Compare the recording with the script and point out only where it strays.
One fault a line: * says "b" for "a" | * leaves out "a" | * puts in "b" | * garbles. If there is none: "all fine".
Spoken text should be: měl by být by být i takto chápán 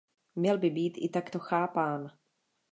* leaves out "by být"